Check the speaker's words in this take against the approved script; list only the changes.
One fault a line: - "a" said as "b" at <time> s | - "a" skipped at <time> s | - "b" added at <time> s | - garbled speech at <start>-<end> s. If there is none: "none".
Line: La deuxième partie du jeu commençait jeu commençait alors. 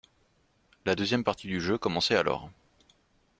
- "jeu commençait" skipped at 2.1 s